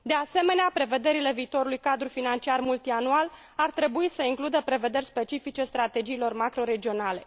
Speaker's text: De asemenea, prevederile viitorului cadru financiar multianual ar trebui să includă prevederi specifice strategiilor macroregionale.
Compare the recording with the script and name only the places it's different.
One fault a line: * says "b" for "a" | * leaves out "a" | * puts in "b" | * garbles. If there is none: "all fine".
all fine